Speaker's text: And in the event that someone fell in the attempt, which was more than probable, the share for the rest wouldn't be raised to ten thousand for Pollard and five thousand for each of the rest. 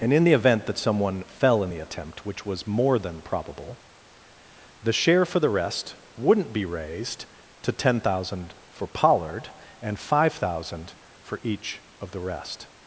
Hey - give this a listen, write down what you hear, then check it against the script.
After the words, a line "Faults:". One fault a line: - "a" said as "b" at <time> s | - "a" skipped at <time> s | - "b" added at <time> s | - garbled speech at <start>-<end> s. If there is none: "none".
And in the event that someone fell in the attempt, which was more than probable, the share for the rest wouldn't be raised to ten thousand for Pollard and five thousand for each of the rest.
Faults:
none